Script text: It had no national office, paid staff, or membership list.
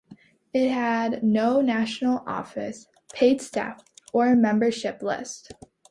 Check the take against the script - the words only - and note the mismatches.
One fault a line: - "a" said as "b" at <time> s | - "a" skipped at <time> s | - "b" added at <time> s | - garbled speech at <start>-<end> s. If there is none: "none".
none